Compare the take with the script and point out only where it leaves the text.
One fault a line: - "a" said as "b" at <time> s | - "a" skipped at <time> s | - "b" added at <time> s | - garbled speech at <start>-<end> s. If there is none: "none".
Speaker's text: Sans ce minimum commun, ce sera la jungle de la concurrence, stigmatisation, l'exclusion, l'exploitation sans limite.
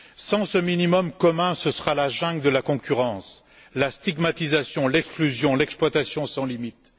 - "la" added at 3.7 s